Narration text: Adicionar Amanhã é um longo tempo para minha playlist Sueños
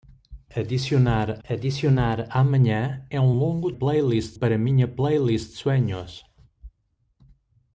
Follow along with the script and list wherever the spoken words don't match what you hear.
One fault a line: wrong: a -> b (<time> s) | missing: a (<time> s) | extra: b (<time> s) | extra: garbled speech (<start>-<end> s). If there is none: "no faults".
extra: adicionar (1.5 s)
wrong: tempo -> playlist (3.7 s)